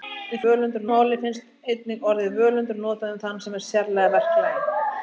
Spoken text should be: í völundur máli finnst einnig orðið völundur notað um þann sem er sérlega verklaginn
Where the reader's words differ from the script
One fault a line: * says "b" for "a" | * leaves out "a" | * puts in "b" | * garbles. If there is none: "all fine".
all fine